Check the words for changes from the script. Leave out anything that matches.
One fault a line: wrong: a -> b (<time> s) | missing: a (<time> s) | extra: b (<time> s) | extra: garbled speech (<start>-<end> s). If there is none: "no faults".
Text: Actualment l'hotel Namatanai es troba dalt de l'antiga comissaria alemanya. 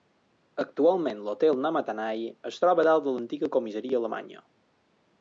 no faults